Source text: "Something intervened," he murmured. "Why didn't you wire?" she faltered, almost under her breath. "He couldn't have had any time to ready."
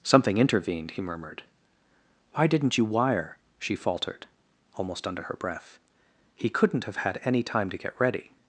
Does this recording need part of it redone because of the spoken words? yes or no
yes